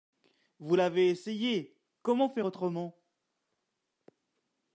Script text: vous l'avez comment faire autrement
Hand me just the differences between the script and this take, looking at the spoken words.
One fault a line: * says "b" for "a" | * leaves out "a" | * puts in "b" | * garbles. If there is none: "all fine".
* puts in "essayé"